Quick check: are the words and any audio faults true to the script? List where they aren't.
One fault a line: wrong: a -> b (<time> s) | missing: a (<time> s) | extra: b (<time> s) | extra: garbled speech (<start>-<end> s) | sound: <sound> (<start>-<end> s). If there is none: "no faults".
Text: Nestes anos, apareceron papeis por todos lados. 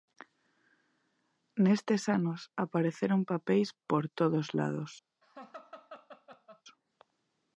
sound: laugh (5.2-6.6 s)